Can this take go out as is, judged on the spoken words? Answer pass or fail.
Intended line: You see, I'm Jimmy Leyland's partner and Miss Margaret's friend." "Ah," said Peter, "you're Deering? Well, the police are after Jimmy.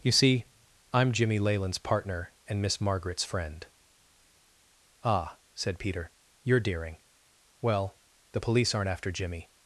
fail